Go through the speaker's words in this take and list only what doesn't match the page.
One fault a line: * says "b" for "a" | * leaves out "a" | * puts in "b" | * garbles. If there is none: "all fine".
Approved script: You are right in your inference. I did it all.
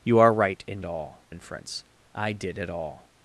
* says "all" for "your"